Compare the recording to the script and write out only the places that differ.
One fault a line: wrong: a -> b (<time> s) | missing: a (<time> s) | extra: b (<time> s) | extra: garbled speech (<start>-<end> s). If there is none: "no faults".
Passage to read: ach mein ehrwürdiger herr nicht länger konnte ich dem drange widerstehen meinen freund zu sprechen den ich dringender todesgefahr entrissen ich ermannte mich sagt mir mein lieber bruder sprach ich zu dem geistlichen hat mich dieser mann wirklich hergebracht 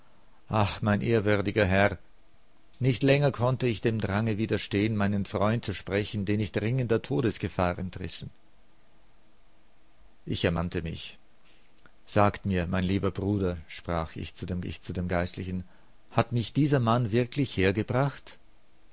extra: ich zu dem (14.6 s)